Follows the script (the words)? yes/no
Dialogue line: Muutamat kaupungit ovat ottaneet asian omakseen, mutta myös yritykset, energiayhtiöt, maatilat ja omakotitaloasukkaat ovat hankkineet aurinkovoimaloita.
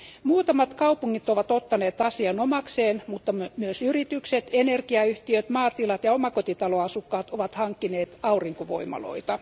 yes